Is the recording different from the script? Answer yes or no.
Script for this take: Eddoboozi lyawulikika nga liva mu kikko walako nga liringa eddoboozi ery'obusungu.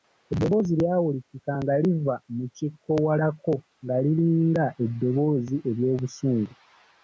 no